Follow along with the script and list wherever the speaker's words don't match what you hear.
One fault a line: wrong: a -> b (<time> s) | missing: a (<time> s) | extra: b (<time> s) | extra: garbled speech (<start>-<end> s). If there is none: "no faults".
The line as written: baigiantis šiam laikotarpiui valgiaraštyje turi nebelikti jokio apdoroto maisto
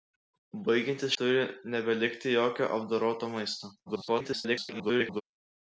missing: šiam laikotarpiui valgiaraštyje (1.2 s)
extra: garbled speech (3.9-5.2 s)